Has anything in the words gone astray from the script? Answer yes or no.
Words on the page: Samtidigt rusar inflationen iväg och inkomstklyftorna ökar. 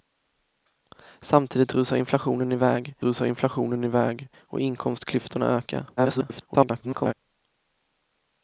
yes